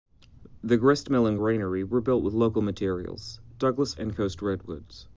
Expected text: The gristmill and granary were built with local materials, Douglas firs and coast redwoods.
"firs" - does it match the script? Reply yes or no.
no